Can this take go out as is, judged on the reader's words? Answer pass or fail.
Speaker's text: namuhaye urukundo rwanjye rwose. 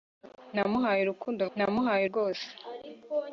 fail